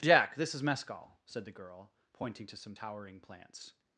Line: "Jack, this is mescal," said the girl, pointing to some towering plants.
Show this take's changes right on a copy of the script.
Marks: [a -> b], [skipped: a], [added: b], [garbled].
"Jack, this is mescal," said the girl, pointing to some towering plants.